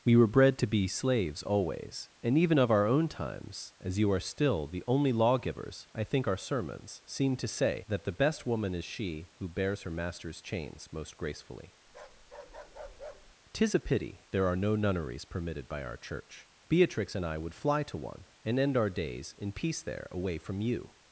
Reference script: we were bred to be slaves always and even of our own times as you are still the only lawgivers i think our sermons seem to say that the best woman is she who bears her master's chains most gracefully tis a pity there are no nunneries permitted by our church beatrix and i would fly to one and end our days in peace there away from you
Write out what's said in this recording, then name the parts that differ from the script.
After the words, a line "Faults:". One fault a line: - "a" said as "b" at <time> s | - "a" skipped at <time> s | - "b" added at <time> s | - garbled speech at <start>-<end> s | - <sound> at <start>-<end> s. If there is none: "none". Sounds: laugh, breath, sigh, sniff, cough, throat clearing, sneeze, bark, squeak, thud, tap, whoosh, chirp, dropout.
we were bred to be slaves always and even of our own times as you are still the only lawgivers i think our sermons seem to say that the best woman is she who bears her master's chains most gracefully tis a pity there are no nunneries permitted by our church beatrix and i would fly to one and end our days in peace there away from you
Faults:
- bark at 11.9-13.4 s